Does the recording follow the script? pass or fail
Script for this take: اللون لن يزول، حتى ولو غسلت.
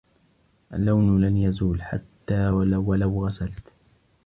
pass